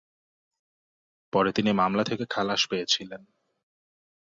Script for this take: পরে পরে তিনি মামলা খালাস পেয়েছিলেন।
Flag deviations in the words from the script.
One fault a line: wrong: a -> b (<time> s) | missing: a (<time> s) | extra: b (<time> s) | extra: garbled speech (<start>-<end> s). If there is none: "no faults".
missing: পরে (1.5 s)
extra: থেকে (2.0 s)